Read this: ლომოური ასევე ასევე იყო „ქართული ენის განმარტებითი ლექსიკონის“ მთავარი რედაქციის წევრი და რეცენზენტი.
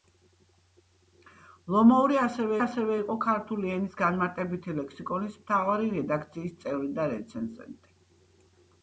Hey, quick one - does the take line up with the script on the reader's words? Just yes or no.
yes